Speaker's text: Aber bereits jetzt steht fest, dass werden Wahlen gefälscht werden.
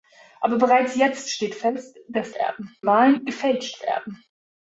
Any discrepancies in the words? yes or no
no